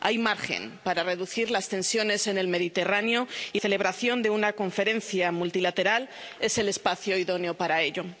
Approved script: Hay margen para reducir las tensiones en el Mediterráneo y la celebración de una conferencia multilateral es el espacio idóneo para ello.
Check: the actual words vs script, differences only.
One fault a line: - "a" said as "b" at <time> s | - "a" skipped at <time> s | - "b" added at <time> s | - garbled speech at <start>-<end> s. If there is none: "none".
- "la" skipped at 3.6 s